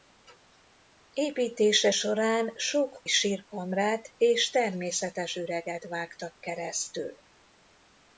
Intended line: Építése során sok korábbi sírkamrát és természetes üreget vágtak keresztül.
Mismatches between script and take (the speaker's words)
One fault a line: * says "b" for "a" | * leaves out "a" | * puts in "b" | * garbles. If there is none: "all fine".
* leaves out "korábbi"